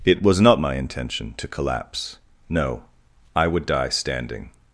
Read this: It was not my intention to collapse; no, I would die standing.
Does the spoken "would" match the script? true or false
true